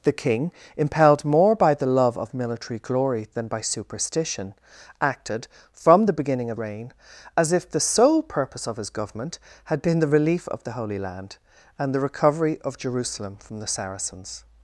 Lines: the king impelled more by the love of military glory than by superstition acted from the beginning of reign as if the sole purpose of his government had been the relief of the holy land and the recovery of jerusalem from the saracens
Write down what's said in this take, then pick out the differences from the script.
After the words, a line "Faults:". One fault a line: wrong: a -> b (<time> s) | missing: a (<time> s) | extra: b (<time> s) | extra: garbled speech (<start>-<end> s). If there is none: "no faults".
the king impelled more by the love of military glory than by superstition acted from the beginning of reign as if the sole purpose of his government had been the relief of the holy land and the recovery of jerusalem from the saracens
Faults:
no faults